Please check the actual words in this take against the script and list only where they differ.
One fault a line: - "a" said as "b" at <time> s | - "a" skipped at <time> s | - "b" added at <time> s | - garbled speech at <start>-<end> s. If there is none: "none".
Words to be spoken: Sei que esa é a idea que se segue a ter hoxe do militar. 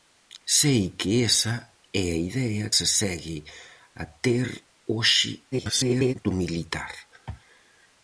- "que" skipped at 2.6 s
- garbled speech at 5.5-6.1 s